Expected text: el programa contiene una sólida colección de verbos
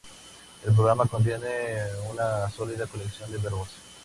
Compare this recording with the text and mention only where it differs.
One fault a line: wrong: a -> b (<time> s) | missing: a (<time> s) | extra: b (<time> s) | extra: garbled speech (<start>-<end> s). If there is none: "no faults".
no faults